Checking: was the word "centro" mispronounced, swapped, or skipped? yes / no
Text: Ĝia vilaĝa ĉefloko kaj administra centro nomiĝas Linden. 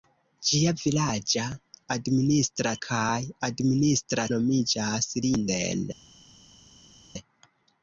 yes